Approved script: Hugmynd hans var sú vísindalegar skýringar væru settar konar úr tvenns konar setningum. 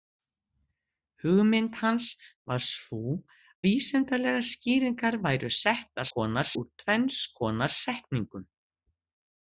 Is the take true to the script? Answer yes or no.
yes